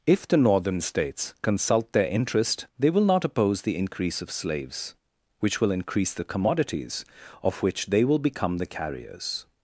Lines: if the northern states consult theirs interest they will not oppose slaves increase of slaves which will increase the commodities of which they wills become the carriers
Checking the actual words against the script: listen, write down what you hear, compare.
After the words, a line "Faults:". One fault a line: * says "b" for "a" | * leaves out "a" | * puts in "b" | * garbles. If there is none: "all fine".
if the northern states consult their interest they will not oppose the increase of slaves which will increase the commodities of which they will become the carriers
Faults:
* says "their" for "theirs"
* says "the" for "slaves"
* says "will" for "wills"